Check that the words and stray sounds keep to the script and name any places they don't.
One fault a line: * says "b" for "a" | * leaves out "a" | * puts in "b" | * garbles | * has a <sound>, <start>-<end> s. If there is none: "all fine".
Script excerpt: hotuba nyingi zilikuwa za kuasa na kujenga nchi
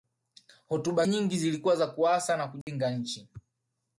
* has a dropout, 2.6-2.7 s